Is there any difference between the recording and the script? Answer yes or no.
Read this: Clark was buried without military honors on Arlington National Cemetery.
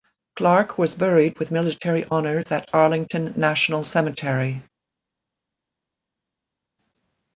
yes